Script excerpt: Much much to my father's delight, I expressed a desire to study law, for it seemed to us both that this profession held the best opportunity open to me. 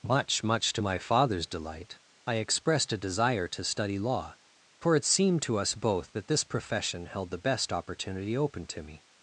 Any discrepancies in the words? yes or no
no